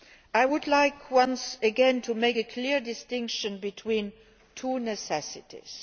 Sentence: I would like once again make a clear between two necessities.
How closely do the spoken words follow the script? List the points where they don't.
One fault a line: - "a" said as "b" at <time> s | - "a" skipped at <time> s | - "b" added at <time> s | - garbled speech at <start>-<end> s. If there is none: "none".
- "to" added at 2.0 s
- "distinction" added at 2.8 s